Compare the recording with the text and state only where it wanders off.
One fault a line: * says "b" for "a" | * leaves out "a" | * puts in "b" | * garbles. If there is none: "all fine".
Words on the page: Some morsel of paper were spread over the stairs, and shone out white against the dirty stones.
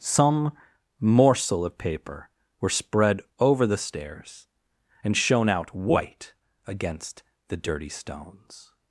all fine